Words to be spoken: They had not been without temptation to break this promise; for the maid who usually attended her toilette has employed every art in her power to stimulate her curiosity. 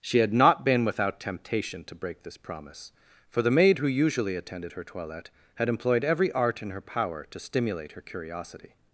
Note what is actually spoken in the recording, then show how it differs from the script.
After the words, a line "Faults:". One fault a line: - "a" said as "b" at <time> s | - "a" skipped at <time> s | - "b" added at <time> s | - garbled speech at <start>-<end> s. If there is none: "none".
She had not been without temptation to break this promise; for the maid who usually attended her toilette had employed every art in her power to stimulate her curiosity.
Faults:
- "They" said as "She" at 0.0 s
- "has" said as "had" at 5.6 s